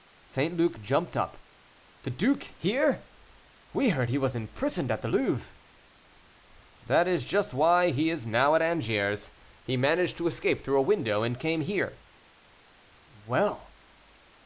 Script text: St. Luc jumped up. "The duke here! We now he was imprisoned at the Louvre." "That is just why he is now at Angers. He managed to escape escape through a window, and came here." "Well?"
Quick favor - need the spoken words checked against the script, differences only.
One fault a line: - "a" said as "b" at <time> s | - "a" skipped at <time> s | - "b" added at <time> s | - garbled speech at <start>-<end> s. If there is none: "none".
- "now" said as "heard" at 3.9 s
- "escape" skipped at 10.6 s